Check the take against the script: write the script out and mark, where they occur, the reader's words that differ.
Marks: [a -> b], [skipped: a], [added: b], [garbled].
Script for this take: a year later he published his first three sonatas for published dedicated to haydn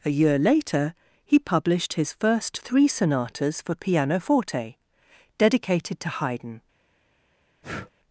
a year later he published his first three sonatas for [published -> pianoforte] dedicated to haydn